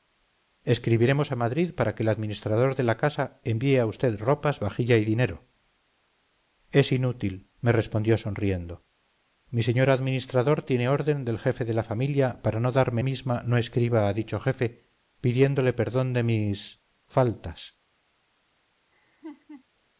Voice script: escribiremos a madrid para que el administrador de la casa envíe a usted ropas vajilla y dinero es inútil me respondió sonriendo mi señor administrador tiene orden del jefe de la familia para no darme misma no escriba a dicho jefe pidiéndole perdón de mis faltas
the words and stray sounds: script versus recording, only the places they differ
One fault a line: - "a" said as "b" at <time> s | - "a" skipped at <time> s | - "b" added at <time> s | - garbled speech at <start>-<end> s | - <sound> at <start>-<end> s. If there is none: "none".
- laugh at 18.9-19.6 s